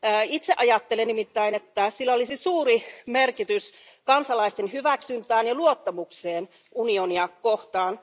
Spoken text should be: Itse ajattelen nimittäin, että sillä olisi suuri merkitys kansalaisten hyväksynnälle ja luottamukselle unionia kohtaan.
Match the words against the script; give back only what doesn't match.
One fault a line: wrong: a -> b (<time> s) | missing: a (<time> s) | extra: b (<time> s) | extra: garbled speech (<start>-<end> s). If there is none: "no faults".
no faults